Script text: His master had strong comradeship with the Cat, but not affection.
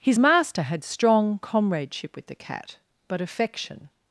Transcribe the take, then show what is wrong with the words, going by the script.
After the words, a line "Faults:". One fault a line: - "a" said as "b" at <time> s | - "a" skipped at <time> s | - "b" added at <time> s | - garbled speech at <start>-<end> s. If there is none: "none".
His master had strong comradeship with the Cat, but affection.
Faults:
- "not" skipped at 3.2 s